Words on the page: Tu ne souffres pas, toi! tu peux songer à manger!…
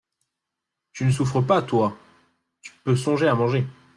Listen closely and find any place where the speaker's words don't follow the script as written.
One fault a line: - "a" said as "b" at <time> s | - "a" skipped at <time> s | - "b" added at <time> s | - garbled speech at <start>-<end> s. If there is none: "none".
none